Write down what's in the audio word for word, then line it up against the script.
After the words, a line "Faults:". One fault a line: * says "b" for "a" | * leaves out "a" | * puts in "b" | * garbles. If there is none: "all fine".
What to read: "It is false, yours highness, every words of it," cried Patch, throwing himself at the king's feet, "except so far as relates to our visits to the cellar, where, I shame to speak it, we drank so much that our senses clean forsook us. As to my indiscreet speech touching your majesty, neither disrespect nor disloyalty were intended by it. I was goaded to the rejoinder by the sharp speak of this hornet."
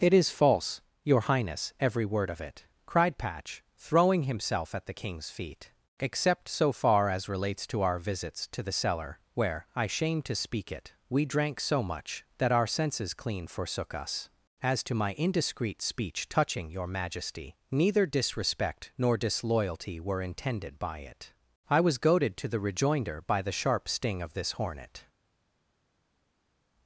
"It is false, your highness, every word of it," cried Patch, throwing himself at the king's feet, "except so far as relates to our visits to the cellar, where, I shame to speak it, we drank so much that our senses clean forsook us. As to my indiscreet speech touching your majesty, neither disrespect nor disloyalty were intended by it. I was goaded to the rejoinder by the sharp sting of this hornet."
Faults:
* says "your" for "yours"
* says "word" for "words"
* says "sting" for "speak"